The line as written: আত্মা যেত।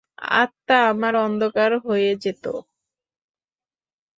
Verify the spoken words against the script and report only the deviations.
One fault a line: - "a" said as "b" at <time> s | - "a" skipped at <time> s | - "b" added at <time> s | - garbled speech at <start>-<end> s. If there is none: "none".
- "আমার অন্ধকার হয়ে" added at 0.9 s